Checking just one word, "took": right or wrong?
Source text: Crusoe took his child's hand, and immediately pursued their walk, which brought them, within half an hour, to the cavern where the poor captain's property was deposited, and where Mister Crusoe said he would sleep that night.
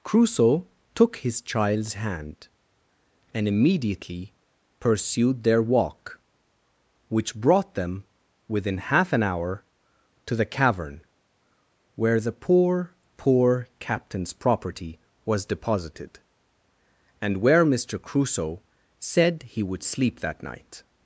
right